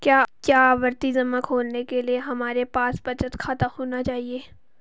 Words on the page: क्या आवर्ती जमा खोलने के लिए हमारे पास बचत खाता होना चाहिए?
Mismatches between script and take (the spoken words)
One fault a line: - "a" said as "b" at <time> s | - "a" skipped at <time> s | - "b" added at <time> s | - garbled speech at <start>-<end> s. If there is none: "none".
none